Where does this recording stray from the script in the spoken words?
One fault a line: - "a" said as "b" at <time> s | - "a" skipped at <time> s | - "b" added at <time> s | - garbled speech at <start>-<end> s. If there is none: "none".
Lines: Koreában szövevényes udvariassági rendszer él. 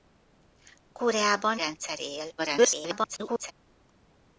- "szövevényes udvariassági" skipped at 1.6 s
- garbled speech at 2.4-3.5 s